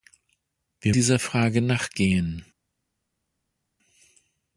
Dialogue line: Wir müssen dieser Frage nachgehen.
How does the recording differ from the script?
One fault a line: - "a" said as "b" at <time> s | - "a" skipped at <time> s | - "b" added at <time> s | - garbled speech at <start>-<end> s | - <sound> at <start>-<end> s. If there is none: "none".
- "müssen" skipped at 0.9 s